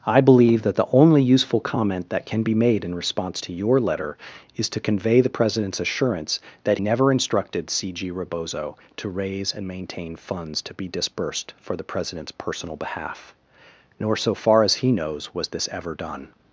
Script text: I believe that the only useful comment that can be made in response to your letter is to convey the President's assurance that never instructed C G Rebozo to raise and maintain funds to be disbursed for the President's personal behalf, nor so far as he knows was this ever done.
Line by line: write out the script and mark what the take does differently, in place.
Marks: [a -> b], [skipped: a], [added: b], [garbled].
I believe that the only useful comment that can be made in response to your letter is to convey the President's assurance that never instructed C G Rebozo to raise and maintain funds to be disbursed for the President's personal behalf, nor so far as he knows was this ever done.